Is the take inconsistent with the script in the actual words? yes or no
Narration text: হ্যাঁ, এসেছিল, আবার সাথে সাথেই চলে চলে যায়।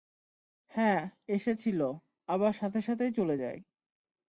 yes